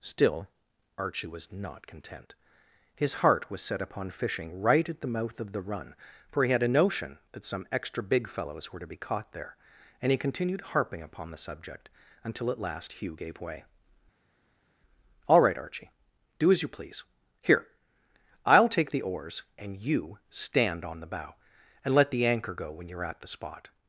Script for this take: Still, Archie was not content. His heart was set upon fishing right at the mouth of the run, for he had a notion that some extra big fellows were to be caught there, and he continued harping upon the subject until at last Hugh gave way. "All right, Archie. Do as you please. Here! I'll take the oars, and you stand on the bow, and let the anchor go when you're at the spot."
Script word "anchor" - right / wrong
right